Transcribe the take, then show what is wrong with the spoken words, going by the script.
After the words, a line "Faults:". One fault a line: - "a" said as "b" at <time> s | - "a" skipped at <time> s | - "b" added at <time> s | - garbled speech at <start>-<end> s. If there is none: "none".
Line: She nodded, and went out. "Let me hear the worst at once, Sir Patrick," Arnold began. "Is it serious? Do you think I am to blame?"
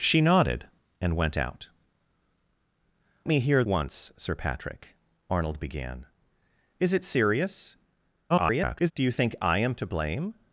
She nodded, and went out. "Me hear once, Sir Patrick," Arnold began. "Is it serious? [garbled] Do you think I am to blame?"
Faults:
- "Let" skipped at 1.7 s
- "the worst at" skipped at 3.6 s
- garbled speech at 8.3-8.9 s